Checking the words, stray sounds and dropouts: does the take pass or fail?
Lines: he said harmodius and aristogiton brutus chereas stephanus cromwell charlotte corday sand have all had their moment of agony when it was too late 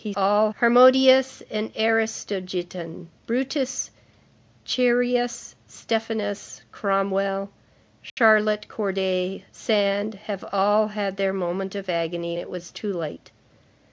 fail